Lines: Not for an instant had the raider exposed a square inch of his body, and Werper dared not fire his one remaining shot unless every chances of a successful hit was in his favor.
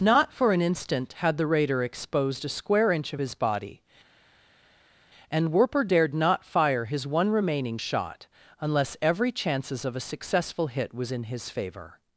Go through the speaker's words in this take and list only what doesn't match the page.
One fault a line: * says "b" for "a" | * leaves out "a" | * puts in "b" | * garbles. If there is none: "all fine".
all fine